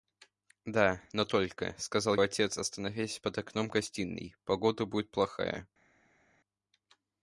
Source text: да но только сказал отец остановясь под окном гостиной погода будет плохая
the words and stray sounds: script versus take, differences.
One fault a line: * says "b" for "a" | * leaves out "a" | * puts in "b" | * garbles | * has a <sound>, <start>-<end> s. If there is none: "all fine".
all fine